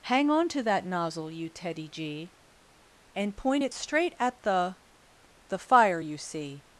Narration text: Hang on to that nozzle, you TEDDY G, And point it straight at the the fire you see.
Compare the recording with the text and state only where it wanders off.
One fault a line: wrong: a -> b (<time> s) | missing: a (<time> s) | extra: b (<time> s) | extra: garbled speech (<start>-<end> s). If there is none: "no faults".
no faults